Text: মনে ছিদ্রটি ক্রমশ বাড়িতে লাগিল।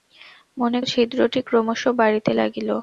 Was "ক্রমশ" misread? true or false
false